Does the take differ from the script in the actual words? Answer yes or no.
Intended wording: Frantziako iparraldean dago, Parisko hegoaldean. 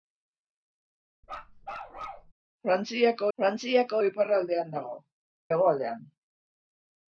yes